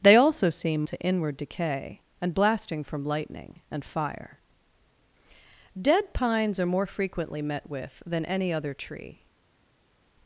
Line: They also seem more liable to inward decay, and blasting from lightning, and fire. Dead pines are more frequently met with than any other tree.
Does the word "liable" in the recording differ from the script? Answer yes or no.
yes